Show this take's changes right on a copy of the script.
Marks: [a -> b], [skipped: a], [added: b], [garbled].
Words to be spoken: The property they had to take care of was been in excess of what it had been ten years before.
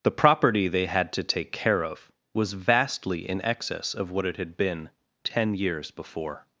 The property they had to take care of was [been -> vastly] in excess of what it had been ten years before.